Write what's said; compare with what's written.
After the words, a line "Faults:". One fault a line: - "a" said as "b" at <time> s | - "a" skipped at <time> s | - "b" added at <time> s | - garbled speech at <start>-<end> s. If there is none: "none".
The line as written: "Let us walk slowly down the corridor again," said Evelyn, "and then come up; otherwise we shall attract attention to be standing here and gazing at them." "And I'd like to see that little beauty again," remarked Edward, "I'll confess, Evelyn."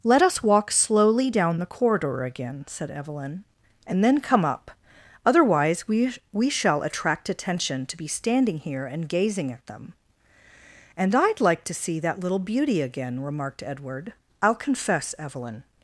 "Let us walk slowly down the corridor again," said Evelyn, "and then come up; otherwise we we shall attract attention to be standing here and gazing at them." "And I'd like to see that little beauty again," remarked Edward, "I'll confess, Evelyn."
Faults:
- "we" added at 6.3 s